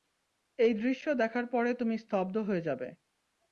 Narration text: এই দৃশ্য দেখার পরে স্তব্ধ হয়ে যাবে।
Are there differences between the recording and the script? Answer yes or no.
yes